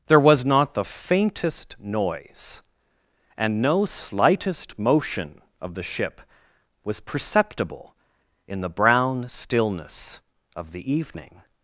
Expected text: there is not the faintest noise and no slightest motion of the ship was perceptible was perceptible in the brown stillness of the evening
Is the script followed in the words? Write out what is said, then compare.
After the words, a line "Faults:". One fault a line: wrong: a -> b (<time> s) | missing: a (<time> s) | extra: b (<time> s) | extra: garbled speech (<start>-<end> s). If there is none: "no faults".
there was not the faintest noise and no slightest motion of the ship was perceptible in the brown stillness of the evening
Faults:
wrong: is -> was (0.2 s)
missing: was perceptible (7.9 s)